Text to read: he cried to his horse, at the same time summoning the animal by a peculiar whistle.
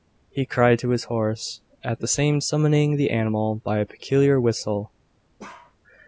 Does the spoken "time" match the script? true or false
false